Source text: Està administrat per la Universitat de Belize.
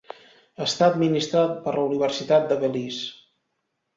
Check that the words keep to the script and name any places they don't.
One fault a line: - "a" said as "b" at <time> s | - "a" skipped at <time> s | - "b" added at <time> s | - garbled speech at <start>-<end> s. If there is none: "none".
none